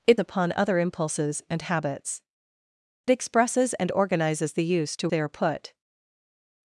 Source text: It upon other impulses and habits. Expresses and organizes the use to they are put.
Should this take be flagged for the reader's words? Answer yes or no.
no